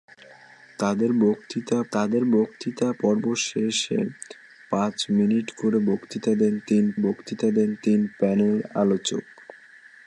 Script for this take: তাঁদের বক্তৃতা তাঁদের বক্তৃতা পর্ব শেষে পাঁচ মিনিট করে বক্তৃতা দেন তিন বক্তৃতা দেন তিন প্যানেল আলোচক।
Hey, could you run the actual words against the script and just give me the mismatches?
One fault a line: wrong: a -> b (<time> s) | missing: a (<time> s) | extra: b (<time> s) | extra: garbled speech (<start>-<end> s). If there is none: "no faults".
no faults